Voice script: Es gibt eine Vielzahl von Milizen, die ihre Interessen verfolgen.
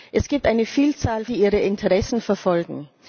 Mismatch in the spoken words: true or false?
true